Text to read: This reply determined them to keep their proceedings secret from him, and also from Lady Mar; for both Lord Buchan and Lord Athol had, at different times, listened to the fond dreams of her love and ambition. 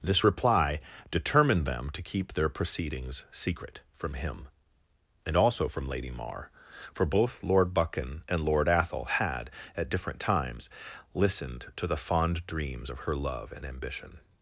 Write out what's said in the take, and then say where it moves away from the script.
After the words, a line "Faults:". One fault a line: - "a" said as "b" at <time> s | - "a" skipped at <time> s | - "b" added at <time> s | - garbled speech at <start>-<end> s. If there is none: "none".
This reply determined them to keep their proceedings secret from him, and also from Lady Mar; for both Lord Buchan and Lord Athol had, at different times, listened to the fond dreams of her love and ambition.
Faults:
none